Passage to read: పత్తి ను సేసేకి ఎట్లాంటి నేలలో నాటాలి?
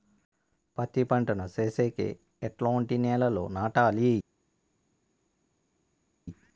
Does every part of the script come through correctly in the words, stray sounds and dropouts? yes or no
no